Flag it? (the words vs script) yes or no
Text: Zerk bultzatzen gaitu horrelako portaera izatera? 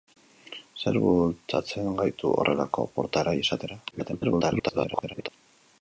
yes